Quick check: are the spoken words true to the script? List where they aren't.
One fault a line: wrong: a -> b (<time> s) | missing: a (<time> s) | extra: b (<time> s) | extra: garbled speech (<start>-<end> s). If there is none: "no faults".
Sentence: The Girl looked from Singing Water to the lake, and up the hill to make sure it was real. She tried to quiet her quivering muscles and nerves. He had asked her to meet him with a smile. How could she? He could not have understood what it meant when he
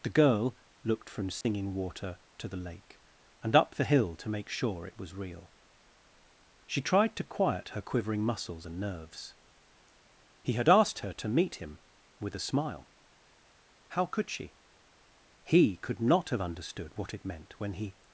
no faults